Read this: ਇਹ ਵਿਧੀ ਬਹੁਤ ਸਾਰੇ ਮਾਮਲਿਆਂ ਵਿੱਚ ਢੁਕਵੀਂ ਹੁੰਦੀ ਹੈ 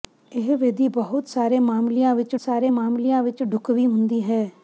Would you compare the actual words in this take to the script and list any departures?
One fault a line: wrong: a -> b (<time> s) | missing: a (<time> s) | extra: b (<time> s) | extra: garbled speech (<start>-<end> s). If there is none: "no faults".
extra: ਸਾਰੇ ਮਾਮਲਿਆਂ ਵਿੱਚ (2.4 s)